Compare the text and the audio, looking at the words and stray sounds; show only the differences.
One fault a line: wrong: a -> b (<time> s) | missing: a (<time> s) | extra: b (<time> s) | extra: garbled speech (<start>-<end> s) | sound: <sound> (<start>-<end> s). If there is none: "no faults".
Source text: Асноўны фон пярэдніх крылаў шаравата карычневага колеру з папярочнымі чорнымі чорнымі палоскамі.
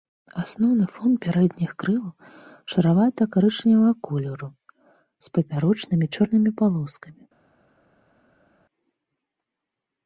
missing: чорнымі (6.5 s)